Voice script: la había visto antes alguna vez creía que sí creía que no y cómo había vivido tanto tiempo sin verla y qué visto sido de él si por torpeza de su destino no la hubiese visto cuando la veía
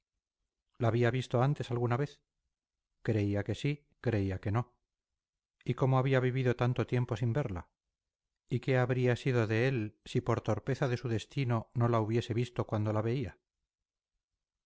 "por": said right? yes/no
yes